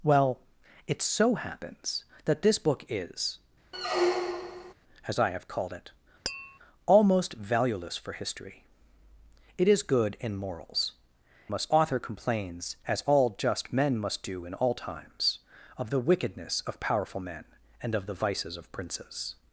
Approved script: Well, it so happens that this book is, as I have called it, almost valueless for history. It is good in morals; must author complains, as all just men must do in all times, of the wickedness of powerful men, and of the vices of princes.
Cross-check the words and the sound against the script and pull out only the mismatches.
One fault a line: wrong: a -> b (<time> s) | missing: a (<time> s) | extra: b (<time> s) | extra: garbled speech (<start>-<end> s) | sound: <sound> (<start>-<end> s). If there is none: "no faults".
sound: squeak (3.7-4.7 s)
sound: tap (6.3-6.6 s)